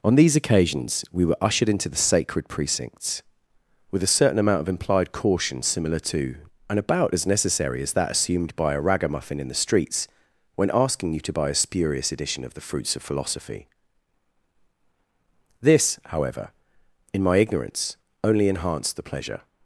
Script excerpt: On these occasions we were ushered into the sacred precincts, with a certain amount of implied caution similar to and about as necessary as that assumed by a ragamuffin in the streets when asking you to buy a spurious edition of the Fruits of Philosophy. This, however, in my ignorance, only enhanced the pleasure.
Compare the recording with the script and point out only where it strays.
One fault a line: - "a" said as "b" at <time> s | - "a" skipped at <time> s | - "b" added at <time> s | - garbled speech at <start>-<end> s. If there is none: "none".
none